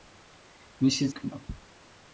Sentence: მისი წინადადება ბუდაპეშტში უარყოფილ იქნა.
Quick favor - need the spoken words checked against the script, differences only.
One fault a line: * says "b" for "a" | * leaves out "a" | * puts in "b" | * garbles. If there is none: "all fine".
* leaves out "წინადადება ბუდაპეშტში უარყოფილ"